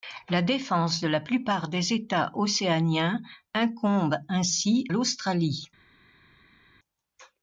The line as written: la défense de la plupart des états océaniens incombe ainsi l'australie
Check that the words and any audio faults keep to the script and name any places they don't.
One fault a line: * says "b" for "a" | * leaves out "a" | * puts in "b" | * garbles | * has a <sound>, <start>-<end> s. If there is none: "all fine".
all fine